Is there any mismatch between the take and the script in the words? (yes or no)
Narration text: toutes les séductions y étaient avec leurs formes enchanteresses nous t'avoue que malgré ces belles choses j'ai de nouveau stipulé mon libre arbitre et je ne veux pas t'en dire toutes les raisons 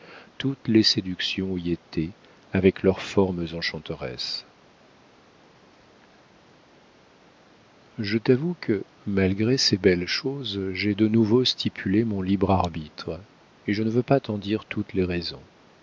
yes